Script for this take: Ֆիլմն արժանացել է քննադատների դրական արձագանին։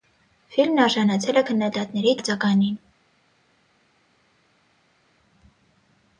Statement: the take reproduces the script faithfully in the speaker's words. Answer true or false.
false